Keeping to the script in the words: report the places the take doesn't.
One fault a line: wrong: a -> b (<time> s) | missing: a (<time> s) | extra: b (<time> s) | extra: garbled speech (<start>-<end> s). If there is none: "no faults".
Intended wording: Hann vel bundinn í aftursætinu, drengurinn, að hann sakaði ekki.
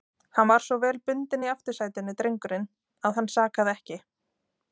extra: var svo (0.5 s)